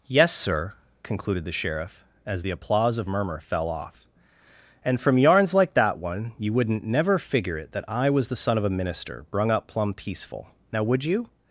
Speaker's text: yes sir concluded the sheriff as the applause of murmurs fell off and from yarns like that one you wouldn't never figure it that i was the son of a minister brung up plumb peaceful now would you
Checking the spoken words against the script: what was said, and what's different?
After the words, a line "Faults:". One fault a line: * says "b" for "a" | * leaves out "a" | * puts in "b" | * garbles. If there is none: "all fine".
yes sir concluded the sheriff as the applause of murmur fell off and from yarns like that one you wouldn't never figure it that i was the son of a minister brung up plumb peaceful now would you
Faults:
* says "murmur" for "murmurs"